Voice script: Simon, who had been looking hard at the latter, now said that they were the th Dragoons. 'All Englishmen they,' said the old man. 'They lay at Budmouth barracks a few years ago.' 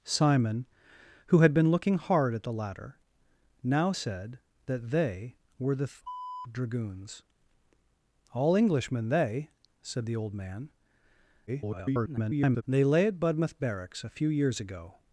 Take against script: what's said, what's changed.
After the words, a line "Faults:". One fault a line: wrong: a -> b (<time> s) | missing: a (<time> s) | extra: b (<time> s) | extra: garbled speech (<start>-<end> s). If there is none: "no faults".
Simon, who had been looking hard at the latter, now said that they were the th Dragoons. 'All Englishmen they,' said the old man. [garbled] 'They lay at Budmouth barracks a few years ago.'
Faults:
extra: garbled speech (11.5-12.6 s)